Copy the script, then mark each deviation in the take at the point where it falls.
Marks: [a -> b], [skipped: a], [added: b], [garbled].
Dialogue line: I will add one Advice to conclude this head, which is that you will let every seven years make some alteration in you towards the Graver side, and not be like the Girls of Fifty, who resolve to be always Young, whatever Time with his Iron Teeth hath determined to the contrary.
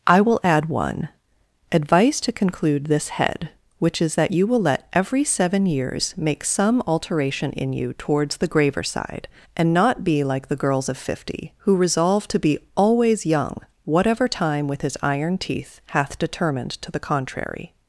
I will add one Advice to conclude this head, which is that you will let every seven years make some alteration in you towards the Graver side, and not be like the Girls of Fifty, who resolve to be always Young, whatever Time with his Iron Teeth hath determined to the contrary.